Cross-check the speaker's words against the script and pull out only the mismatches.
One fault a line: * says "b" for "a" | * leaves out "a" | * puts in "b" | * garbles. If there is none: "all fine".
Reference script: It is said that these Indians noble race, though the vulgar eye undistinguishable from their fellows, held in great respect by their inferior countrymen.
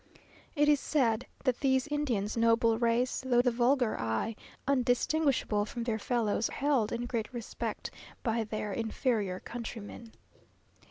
all fine